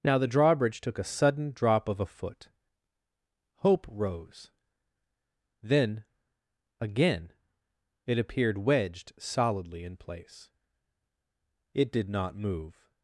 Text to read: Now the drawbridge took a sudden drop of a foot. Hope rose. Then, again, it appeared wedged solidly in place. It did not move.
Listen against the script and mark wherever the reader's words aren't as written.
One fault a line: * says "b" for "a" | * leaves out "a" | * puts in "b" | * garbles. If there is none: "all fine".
all fine